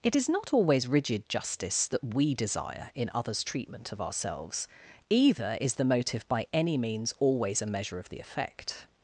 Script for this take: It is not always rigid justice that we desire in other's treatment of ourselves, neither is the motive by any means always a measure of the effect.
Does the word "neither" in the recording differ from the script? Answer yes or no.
yes